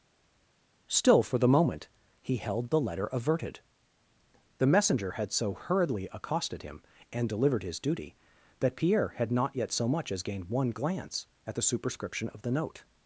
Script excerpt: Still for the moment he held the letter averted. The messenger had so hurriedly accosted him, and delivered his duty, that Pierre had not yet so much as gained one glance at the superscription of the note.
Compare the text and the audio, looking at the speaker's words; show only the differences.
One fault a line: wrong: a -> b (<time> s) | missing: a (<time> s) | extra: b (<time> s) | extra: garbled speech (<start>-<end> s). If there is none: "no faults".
no faults